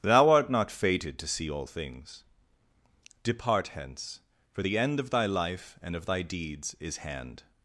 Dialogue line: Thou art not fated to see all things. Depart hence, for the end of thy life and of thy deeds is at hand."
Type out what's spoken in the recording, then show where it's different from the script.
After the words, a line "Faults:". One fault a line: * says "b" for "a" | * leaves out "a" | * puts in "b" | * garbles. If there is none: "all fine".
Thou art not fated to see all things. Depart hence, for the end of thy life and of thy deeds is hand."
Faults:
* leaves out "at"